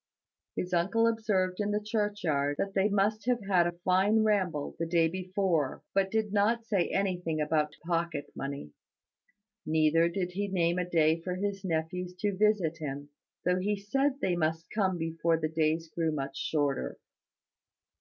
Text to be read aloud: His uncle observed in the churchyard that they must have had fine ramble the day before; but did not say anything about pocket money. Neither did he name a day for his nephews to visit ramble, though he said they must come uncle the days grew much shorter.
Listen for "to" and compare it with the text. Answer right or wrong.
right